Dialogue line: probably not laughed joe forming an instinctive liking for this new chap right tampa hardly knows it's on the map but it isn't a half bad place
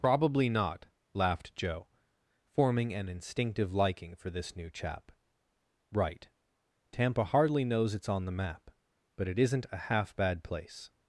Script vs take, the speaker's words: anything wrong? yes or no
no